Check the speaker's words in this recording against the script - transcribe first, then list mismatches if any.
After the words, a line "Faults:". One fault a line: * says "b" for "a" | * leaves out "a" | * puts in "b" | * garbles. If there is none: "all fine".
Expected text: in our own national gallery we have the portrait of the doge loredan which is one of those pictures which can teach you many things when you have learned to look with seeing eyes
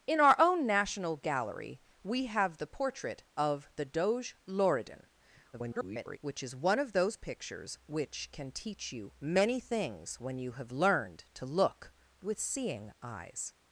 in our own national gallery we have the portrait of the doge loredan [garbled] which is one of those pictures which can teach you many things when you have learned to look with seeing eyes
Faults:
* garbles